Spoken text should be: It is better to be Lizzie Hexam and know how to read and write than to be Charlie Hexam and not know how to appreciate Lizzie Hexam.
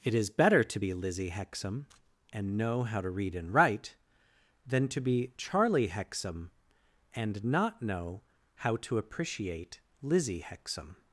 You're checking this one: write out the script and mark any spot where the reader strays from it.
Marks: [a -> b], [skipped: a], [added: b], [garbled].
It is better to be Lizzie Hexam and know how to read and write than to be Charlie Hexam and not know how to appreciate Lizzie Hexam.